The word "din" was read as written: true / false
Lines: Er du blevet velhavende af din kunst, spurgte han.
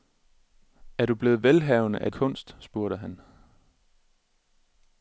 false